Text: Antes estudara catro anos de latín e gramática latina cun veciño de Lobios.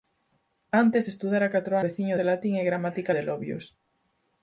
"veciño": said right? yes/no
no